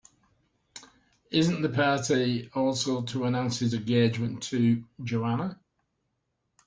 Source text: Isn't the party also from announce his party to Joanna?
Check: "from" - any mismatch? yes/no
yes